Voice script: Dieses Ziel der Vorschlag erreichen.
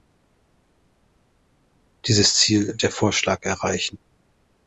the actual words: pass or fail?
pass